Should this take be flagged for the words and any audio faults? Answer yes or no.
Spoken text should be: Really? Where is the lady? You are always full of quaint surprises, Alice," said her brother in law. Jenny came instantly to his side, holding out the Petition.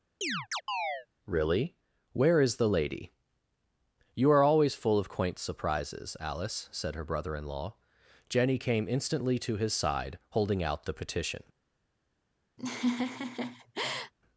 yes